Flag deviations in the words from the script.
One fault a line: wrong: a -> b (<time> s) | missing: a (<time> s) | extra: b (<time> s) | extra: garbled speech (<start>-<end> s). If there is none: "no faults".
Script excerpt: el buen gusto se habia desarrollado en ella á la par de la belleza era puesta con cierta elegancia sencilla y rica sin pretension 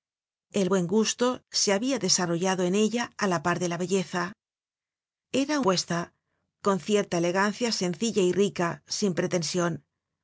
no faults